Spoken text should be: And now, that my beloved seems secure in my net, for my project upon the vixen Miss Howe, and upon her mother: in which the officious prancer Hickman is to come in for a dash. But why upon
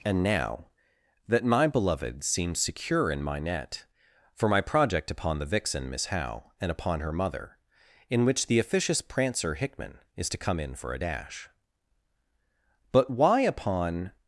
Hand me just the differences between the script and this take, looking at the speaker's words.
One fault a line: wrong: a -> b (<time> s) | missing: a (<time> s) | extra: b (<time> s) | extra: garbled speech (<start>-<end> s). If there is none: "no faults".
no faults